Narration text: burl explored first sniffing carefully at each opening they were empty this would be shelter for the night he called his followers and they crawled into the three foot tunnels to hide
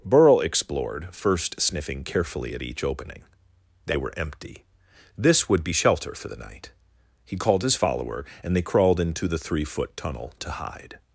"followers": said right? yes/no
no